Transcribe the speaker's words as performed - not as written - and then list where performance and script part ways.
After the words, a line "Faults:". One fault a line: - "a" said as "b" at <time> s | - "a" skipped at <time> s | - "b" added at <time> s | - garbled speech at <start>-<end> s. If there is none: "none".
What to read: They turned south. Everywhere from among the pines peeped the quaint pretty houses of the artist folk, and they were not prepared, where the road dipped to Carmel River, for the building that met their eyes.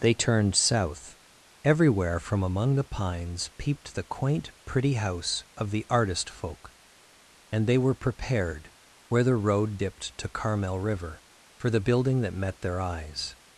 They turned south. Everywhere from among the pines peeped the quaint pretty house of the artist folk, and they were prepared, where the road dipped to Carmel River, for the building that met their eyes.
Faults:
- "houses" said as "house" at 4.9 s
- "not" skipped at 7.9 s